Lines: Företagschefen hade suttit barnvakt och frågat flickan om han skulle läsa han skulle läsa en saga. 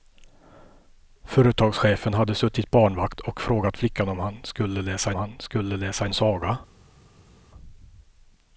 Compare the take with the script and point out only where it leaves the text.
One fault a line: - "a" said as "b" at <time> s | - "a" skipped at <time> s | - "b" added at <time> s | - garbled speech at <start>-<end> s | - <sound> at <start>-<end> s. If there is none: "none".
none